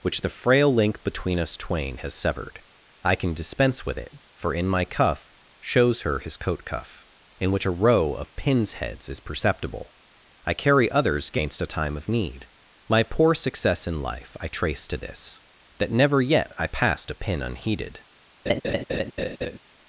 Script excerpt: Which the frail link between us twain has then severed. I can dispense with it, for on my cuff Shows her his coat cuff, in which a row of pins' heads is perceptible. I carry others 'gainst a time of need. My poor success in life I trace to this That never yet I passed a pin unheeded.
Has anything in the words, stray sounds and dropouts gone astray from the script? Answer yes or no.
yes